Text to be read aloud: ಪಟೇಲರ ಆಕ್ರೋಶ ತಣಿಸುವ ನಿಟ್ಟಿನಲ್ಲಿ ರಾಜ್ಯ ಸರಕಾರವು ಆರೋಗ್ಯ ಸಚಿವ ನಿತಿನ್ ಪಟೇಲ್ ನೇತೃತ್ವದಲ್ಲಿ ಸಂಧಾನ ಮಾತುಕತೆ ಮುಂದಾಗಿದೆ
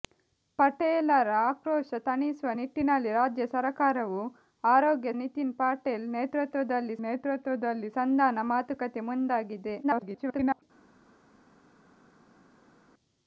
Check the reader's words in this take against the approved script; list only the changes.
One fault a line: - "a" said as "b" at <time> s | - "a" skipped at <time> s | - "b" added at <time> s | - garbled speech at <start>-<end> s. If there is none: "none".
- "ಸಚಿವ" skipped at 5.1 s
- "ನೇತೃತ್ವದಲ್ಲಿ" added at 7.0 s
- garbled speech at 9.8-10.6 s